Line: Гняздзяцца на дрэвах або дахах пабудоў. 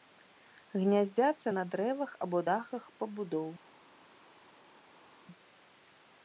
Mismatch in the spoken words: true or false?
false